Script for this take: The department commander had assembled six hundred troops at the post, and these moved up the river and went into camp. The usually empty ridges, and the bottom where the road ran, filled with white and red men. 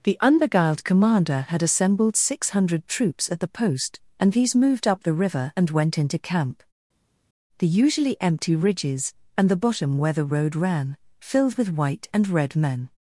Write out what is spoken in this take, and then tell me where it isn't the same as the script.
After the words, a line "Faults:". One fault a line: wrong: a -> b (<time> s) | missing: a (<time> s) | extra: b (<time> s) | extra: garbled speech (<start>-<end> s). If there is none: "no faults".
The unbeguiled commander had assembled six hundred troops at the post, and these moved up the river and went into camp. The usually empty ridges, and the bottom where the road ran, filled with white and red men.
Faults:
wrong: department -> unbeguiled (0.2 s)